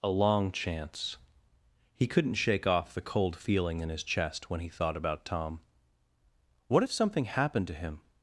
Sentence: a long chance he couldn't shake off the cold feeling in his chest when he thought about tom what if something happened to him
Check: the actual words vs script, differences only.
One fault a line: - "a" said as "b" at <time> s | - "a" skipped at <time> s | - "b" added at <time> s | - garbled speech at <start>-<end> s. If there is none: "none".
none